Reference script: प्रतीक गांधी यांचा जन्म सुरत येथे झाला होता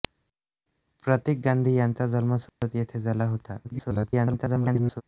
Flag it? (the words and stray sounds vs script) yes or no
yes